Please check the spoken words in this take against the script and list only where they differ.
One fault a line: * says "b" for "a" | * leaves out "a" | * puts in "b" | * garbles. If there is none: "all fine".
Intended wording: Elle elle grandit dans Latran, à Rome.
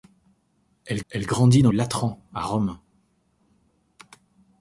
all fine